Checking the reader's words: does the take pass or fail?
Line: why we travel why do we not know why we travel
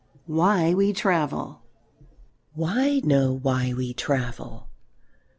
fail